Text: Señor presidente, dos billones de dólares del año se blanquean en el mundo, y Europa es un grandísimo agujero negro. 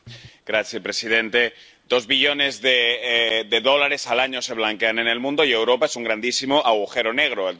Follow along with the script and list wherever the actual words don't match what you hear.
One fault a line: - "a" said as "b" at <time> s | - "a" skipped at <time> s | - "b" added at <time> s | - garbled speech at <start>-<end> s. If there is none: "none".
- "del" said as "al" at 4.1 s